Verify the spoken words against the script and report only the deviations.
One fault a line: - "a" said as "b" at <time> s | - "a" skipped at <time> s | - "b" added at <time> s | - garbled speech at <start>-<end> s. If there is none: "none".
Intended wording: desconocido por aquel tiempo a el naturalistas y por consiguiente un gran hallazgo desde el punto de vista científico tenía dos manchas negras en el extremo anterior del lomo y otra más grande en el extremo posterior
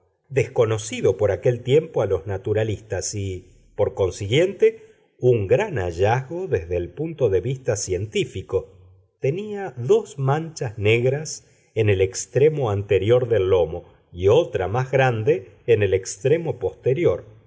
- "el" said as "los" at 2.0 s